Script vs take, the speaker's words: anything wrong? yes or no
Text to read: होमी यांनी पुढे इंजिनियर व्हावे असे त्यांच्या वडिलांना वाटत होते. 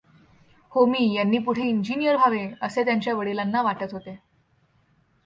no